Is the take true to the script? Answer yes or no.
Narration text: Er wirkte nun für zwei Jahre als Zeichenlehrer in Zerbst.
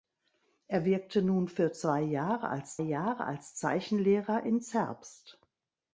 no